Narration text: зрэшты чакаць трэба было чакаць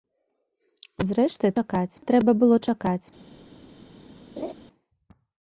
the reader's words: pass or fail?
pass